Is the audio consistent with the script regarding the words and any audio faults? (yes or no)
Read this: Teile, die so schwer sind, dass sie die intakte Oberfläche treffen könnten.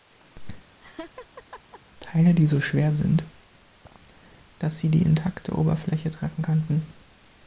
no